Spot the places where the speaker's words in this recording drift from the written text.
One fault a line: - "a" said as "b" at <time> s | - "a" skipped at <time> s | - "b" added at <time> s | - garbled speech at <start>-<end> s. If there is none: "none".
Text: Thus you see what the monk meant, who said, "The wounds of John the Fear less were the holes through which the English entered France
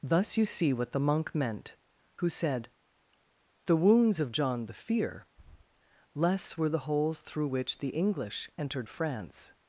none